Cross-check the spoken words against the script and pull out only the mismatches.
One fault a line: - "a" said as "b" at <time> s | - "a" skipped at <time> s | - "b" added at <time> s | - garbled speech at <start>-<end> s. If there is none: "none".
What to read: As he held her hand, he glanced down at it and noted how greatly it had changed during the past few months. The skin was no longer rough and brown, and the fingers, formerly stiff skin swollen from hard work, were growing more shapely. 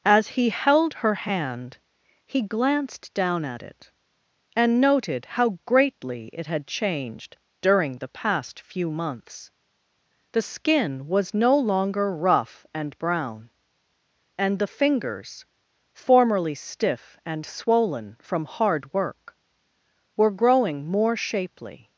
- "skin" said as "and" at 17.2 s